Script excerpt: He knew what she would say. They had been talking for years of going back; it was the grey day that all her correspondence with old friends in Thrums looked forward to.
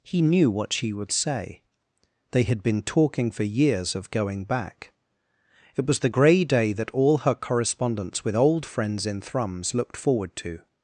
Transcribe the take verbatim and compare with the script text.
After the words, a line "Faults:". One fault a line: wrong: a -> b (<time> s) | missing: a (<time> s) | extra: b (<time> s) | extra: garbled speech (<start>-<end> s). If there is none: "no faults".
He knew what she would say. They had been talking for years of going back; it was the grey day that all her correspondence with old friends in Thrums looked forward to.
Faults:
no faults